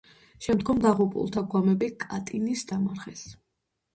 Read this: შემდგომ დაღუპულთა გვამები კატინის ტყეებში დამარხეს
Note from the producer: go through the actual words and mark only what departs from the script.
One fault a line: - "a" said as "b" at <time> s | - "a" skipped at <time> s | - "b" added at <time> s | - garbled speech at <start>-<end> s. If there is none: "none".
- "ტყეებში" skipped at 2.7 s